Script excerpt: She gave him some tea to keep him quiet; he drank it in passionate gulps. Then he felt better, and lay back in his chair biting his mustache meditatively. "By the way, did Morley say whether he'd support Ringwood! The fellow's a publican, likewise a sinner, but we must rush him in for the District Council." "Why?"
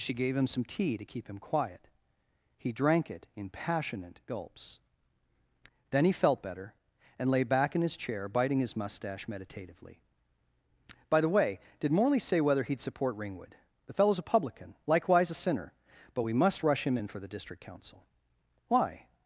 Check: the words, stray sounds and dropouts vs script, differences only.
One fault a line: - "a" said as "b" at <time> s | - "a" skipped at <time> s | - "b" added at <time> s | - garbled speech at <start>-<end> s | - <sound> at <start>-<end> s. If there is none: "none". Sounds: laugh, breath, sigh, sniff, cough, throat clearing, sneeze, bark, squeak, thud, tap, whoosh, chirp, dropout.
none